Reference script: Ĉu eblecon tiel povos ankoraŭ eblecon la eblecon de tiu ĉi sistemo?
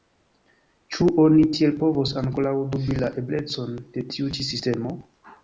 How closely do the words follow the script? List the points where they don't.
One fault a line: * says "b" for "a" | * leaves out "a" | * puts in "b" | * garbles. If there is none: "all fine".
* says "oni" for "eblecon"
* says "dubi" for "eblecon"